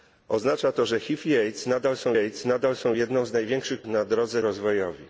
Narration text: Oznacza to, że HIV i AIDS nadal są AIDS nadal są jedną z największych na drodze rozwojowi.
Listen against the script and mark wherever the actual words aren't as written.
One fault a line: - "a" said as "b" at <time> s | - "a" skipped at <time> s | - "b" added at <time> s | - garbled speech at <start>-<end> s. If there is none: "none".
none